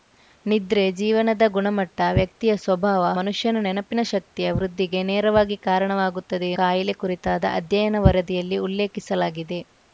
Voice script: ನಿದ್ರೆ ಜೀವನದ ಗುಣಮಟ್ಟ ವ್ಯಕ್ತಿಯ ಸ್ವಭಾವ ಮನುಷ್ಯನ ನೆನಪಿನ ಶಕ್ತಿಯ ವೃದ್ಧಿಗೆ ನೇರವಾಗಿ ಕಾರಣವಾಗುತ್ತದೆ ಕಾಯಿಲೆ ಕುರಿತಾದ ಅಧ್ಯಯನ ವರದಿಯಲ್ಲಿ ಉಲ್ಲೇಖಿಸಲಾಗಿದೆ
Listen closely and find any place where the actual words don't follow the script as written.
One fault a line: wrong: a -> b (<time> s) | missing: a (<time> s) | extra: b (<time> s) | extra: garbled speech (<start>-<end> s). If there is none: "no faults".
no faults